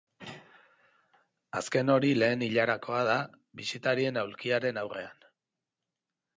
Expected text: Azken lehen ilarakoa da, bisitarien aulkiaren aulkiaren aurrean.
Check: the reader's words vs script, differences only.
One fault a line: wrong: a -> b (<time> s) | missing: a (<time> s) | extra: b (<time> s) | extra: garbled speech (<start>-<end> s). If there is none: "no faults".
extra: hori (2.0 s)
missing: aulkiaren (4.8 s)